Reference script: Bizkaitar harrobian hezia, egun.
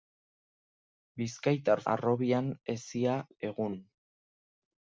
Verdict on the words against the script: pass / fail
pass